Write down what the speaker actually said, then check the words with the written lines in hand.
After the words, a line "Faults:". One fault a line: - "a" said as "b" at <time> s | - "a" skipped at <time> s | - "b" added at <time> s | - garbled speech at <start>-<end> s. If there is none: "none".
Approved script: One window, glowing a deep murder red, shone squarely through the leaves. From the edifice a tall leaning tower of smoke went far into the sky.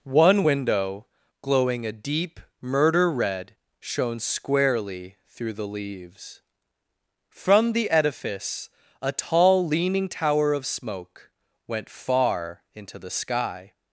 One window, glowing a deep murder red, shone squarely through the leaves. From the edifice a tall leaning tower of smoke went far into the sky.
Faults:
none